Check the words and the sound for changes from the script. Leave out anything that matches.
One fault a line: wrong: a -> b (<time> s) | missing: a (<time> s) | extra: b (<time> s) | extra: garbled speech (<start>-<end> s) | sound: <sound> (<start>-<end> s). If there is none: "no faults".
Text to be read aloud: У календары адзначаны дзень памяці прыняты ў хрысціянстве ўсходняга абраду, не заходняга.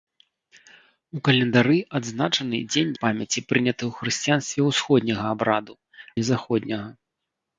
no faults